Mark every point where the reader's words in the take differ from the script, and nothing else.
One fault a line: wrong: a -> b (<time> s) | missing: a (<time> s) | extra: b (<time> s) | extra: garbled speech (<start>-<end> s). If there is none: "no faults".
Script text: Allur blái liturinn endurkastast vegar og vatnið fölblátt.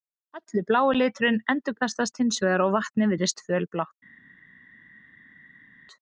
extra: hins (2.2 s)
extra: virðist (3.1 s)